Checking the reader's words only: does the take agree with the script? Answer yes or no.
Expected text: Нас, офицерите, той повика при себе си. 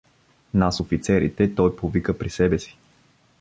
yes